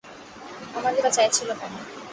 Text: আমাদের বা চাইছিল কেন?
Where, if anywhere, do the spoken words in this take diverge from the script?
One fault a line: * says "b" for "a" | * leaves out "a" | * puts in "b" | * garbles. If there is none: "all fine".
all fine